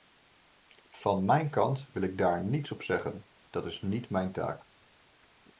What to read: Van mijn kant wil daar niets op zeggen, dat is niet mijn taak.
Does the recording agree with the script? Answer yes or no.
no